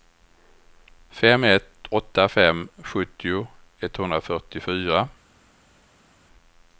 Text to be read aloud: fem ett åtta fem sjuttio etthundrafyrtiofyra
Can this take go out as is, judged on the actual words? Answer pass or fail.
pass